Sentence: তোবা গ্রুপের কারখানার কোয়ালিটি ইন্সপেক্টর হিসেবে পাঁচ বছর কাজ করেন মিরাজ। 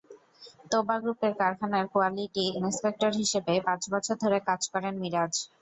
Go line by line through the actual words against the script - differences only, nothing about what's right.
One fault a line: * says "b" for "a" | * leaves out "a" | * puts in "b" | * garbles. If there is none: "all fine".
* puts in "ধরে"